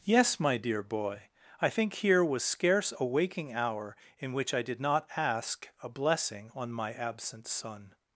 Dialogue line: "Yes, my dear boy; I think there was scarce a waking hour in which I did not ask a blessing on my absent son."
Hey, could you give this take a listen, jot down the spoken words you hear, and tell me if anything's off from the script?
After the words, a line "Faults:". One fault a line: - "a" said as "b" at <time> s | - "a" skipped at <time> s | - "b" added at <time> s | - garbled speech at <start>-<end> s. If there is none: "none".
"Yes, my dear boy; I think here was scarce a waking hour in which I did not ask a blessing on my absent son."
Faults:
- "there" said as "here" at 1.9 s